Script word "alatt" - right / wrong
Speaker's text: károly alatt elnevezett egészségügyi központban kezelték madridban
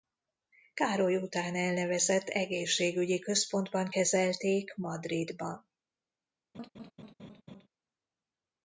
wrong